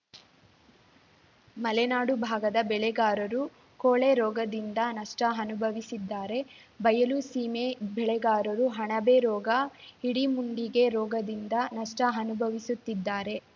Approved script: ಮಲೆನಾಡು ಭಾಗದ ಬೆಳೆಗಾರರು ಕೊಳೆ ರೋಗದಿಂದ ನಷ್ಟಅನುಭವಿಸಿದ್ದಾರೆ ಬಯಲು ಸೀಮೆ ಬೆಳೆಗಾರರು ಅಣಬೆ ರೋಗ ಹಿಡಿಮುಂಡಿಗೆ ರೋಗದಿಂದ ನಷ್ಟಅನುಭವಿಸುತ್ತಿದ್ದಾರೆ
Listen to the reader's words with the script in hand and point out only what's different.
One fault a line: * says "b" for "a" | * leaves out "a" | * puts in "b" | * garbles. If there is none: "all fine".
all fine